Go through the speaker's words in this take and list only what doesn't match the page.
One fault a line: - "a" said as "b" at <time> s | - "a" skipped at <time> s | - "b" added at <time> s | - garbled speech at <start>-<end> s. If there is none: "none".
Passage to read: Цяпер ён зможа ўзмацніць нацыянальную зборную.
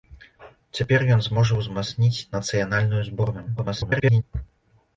- garbled speech at 3.6-4.2 s